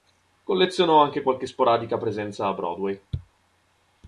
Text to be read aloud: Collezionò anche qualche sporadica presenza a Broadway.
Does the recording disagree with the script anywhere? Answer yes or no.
no